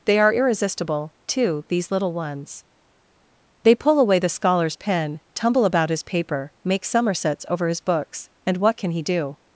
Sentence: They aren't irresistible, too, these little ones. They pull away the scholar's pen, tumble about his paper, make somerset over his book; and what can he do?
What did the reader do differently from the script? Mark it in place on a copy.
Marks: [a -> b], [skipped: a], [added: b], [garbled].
They [aren't -> are] irresistible, too, these little ones. They pull away the scholar's pen, tumble about his paper, make [somerset -> somersets] over his [book; -> books] and what can he do?